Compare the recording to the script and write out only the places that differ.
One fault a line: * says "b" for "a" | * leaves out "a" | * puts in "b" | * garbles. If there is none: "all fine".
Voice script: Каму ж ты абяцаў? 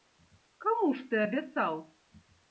all fine